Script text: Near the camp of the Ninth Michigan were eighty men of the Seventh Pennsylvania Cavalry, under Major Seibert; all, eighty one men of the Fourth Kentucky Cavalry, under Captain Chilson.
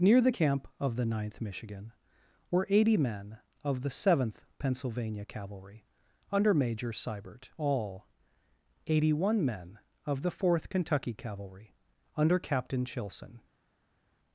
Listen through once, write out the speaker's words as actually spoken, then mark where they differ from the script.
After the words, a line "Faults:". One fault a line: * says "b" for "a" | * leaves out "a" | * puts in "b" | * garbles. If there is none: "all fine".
Near the camp of the Ninth Michigan were eighty men of the Seventh Pennsylvania Cavalry, under Major Seibert; all, eighty one men of the Fourth Kentucky Cavalry, under Captain Chilson.
Faults:
all fine